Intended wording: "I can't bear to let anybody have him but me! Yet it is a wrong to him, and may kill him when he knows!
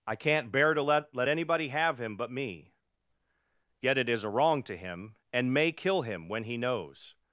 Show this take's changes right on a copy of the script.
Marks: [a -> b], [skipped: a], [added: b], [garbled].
"I can't bear to let [added: let] anybody have him but me! Yet it is a wrong to him, and may kill him when he knows!